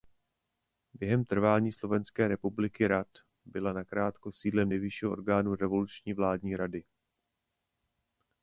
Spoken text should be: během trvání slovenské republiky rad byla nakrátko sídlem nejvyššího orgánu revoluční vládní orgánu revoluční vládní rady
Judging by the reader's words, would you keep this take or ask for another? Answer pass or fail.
fail